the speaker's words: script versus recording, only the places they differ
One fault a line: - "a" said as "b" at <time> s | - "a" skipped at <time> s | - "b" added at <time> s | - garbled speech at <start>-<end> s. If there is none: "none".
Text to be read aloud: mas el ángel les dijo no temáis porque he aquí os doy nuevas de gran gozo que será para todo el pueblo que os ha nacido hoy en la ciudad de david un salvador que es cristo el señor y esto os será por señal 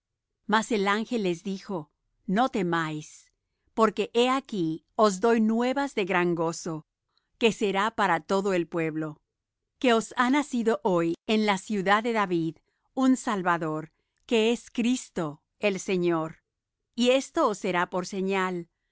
none